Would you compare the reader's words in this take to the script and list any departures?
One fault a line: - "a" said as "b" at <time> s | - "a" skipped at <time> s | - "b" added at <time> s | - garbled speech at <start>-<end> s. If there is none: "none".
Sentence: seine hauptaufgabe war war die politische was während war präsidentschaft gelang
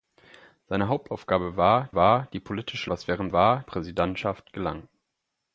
none